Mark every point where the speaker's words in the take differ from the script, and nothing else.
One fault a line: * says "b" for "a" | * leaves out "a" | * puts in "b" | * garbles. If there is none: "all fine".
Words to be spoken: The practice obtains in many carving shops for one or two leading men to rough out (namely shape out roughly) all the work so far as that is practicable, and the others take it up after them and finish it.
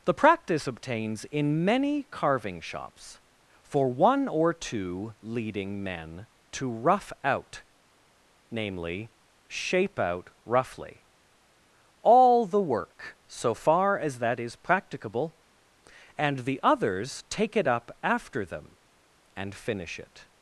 all fine